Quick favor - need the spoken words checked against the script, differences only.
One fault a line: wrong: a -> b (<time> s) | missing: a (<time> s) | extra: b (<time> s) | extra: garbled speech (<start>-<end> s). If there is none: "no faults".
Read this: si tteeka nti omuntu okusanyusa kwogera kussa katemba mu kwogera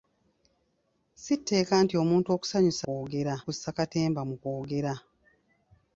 no faults